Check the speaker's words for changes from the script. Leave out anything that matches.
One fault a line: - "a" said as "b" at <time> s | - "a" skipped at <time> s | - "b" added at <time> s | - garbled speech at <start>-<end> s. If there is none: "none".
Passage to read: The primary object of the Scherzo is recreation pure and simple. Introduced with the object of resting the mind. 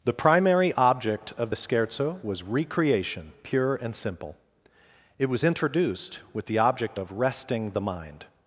- "is" said as "was" at 2.2 s
- "It was" added at 5.2 s